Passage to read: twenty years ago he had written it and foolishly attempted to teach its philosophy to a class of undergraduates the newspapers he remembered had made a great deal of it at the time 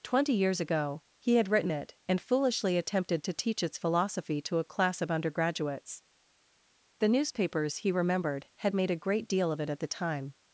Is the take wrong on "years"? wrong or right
right